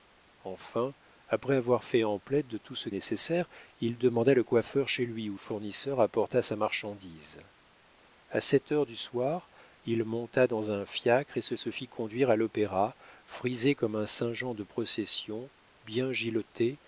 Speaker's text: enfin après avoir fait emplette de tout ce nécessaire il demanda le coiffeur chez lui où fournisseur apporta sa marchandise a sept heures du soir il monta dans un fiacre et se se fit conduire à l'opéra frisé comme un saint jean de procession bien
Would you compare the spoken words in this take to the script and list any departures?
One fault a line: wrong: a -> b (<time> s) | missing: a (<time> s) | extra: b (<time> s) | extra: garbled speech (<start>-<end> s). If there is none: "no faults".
no faults